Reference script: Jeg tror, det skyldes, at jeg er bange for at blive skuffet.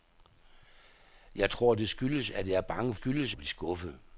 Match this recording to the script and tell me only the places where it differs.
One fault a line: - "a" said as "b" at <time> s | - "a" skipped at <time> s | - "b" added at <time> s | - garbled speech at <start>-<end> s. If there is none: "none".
- "for" said as "skyldes" at 2.9 s